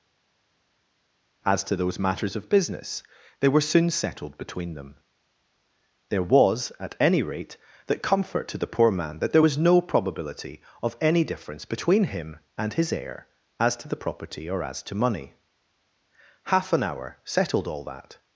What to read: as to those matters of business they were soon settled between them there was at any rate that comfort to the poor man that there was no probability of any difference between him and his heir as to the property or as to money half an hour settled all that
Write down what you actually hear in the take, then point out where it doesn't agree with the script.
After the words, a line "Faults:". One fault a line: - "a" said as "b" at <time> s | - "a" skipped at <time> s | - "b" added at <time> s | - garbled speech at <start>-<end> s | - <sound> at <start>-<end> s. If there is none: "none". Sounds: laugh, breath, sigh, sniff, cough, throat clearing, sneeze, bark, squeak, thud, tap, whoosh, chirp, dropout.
as to those matters of business they were soon settled between them there was at any rate that comfort to the poor man that there was no probability of any difference between him and his heir as to the property or as to money half an hour settled all that
Faults:
none